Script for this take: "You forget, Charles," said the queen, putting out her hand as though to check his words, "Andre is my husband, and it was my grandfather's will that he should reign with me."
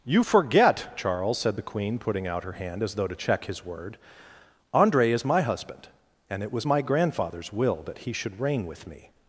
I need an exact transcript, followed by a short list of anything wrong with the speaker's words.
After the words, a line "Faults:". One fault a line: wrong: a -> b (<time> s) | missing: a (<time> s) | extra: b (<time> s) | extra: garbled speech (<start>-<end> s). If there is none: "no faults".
"You forget, Charles," said the queen, putting out her hand as though to check his word, "Andre is my husband, and it was my grandfather's will that he should reign with me."
Faults:
wrong: words -> word (3.6 s)